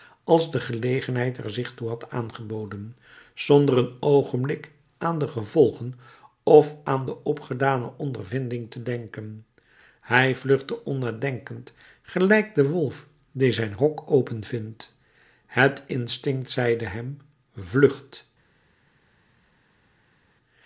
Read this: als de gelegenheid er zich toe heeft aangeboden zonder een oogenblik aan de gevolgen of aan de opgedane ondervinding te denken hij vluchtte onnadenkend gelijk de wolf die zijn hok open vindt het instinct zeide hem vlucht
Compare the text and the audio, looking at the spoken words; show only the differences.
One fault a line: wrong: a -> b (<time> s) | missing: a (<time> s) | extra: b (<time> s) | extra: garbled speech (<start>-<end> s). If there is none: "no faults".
wrong: heeft -> had (1.9 s)